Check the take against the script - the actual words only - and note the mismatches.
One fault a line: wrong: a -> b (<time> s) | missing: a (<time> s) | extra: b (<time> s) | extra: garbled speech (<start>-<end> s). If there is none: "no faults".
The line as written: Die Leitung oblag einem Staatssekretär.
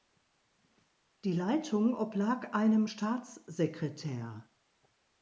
no faults